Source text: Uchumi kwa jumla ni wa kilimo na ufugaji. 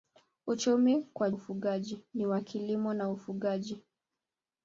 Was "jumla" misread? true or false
true